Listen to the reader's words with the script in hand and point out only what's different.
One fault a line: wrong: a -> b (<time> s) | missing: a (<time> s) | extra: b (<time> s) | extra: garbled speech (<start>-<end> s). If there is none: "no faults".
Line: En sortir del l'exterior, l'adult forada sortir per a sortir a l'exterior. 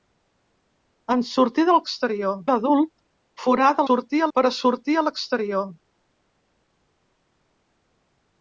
no faults